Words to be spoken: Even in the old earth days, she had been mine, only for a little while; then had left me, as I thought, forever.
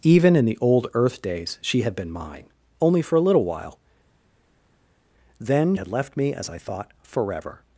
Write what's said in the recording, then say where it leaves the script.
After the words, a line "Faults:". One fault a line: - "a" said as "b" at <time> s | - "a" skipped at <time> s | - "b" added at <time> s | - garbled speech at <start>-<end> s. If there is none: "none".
Even in the old earth days, she had been mine, only for a little while; then had left me, as I thought, forever.
Faults:
none